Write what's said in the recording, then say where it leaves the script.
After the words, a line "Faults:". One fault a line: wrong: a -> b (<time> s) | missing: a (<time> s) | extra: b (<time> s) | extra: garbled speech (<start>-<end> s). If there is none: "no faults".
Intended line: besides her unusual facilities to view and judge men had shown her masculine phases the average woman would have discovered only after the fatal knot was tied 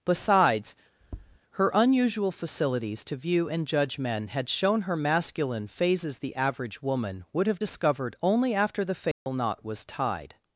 besides her unusual facilities to view and judge men had shown her masculine phases the average woman would have discovered only after the fatal knot was tied
Faults:
no faults